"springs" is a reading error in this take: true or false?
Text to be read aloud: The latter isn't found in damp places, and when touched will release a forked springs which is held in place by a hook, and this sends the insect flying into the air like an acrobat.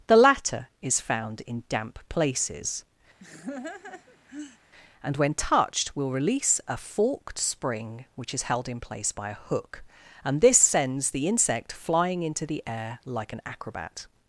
true